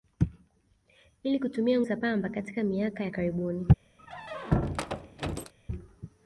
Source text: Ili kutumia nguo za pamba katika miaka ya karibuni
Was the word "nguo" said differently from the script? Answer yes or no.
yes